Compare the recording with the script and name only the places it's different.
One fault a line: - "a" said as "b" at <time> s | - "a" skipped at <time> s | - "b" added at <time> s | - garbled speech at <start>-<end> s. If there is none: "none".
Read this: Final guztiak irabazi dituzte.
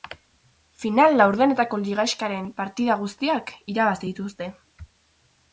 - "laurdenetako ligaxkaren partida" added at 1.2 s